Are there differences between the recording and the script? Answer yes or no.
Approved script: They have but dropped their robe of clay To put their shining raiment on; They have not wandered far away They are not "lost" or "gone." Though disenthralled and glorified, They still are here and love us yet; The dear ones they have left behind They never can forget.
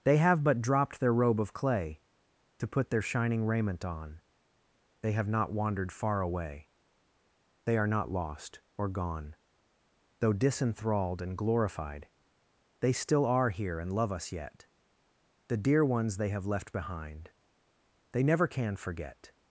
no